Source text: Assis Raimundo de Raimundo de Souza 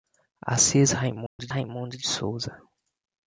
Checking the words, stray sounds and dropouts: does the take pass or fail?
fail